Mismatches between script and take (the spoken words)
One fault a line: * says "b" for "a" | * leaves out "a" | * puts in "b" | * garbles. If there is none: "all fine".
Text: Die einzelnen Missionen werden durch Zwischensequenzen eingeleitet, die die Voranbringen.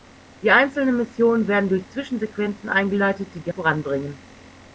all fine